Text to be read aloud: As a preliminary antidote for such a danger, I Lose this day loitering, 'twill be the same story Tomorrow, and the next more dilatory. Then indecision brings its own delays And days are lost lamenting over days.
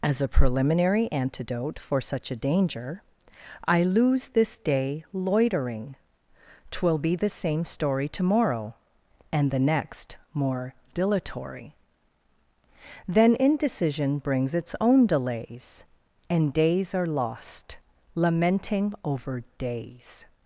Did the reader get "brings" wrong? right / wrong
right